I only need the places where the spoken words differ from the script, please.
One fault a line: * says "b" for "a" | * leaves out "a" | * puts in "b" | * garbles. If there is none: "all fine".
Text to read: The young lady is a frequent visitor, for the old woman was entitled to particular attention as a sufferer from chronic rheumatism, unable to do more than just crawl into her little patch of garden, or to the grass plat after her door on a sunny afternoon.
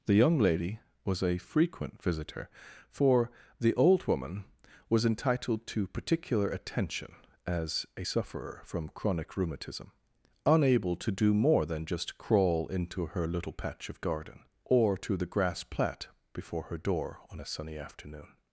* says "was" for "is"
* says "before" for "after"